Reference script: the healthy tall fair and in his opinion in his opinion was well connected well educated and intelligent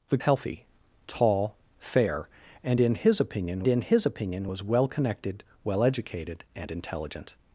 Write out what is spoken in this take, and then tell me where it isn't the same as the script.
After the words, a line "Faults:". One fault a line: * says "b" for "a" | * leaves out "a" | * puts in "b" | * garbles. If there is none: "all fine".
the healthy tall fair and in his opinion in his opinion was well connected well educated and intelligent
Faults:
all fine